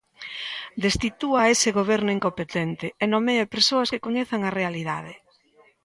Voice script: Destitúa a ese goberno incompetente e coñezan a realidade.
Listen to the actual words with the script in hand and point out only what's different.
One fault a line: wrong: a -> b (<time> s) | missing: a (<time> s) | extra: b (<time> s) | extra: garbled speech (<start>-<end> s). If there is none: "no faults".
extra: nomee persoas que (3.1 s)